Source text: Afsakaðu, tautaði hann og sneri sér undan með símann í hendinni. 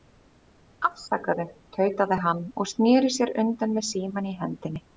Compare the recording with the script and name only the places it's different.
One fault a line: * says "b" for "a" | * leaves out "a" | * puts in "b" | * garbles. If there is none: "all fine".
all fine